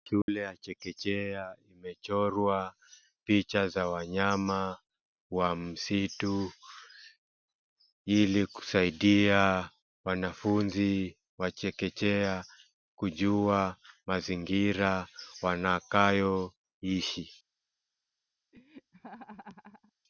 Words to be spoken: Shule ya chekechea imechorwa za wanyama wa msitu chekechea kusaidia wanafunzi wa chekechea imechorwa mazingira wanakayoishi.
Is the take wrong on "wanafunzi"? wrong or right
right